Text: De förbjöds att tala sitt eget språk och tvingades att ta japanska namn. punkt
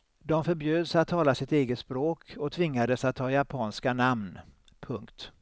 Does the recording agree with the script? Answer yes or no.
yes